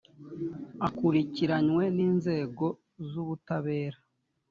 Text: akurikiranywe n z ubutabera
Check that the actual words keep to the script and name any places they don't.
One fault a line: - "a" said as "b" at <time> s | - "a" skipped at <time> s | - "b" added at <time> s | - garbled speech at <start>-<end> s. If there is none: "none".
- "inzego" added at 2.1 s